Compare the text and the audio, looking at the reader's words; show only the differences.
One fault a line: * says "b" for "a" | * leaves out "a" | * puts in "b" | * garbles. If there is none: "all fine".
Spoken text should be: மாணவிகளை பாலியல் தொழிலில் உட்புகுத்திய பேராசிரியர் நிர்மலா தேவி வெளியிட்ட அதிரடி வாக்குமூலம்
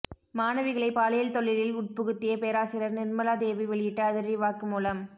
all fine